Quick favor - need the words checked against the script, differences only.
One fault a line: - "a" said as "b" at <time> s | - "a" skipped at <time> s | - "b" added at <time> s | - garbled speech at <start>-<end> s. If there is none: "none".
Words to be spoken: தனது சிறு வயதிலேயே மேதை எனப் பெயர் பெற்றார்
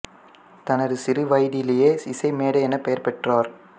- "இசை" added at 2.0 s